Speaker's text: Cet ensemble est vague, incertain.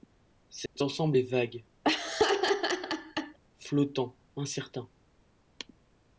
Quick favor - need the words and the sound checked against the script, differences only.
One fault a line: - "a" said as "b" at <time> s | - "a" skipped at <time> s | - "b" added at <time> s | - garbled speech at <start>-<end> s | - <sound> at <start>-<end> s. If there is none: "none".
- dropout at 0.7-0.8 s
- laugh at 1.8-3.4 s
- "flottant" added at 3.6 s